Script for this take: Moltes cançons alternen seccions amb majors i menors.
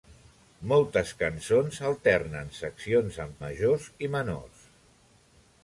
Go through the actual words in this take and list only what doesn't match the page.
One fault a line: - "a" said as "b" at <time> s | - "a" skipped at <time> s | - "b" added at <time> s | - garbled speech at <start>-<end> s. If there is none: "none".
none